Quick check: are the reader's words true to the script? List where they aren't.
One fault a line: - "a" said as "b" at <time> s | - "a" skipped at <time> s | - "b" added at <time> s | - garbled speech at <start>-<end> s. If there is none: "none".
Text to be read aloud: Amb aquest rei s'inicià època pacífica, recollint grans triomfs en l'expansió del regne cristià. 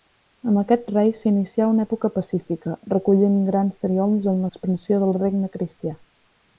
- "una" added at 1.7 s